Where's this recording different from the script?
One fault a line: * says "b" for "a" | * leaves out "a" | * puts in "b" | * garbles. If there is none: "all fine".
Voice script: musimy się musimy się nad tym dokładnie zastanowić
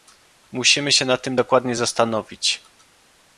* leaves out "musimy się"